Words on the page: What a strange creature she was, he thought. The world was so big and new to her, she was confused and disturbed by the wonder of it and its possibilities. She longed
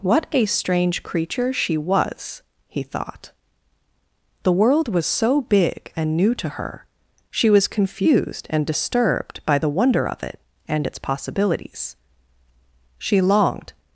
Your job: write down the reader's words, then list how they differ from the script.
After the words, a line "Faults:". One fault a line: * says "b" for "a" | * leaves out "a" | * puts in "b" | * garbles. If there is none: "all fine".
What a strange creature she was, he thought. The world was so big and new to her, she was confused and disturbed by the wonder of it and its possibilities. She longed
Faults:
all fine